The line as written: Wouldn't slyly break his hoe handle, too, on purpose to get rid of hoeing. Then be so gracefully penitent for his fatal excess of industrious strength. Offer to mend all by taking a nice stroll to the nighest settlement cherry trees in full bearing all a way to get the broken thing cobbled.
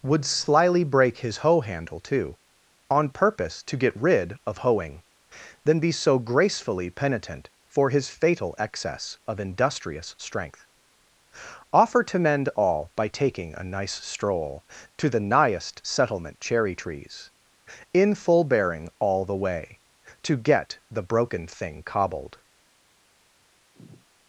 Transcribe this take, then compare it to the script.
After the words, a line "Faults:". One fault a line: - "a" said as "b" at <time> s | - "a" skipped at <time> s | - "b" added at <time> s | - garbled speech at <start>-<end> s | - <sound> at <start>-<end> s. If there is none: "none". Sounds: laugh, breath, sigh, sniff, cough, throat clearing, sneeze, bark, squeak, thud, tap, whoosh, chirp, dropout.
Would slyly break his hoe handle, too, on purpose to get rid of hoeing. Then be so gracefully penitent for his fatal excess of industrious strength. Offer to mend all by taking a nice stroll to the nighest settlement cherry trees in full bearing all the way to get the broken thing cobbled.
Faults:
- "Wouldn't" said as "Would" at 0.0 s
- "a" said as "the" at 19.3 s
- sigh at 23.7-24.1 s